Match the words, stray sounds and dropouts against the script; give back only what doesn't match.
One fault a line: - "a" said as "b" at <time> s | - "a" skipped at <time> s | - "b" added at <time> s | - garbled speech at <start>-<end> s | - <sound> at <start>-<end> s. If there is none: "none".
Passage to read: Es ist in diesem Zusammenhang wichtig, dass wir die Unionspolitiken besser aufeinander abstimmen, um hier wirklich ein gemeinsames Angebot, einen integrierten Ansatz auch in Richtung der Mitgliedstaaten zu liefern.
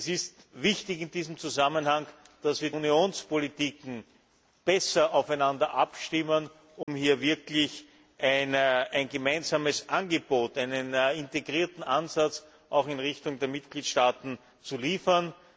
- "die" skipped at 2.7 s
- dropout at 6.8-6.9 s